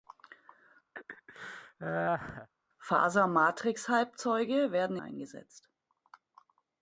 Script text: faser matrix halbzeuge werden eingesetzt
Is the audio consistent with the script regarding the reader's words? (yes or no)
yes